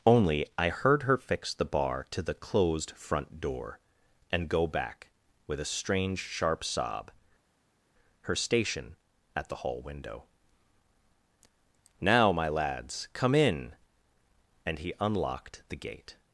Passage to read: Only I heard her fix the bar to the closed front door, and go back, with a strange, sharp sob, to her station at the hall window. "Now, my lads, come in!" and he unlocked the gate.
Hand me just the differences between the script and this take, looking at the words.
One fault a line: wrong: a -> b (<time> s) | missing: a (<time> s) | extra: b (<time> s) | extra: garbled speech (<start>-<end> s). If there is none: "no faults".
missing: to (7.1 s)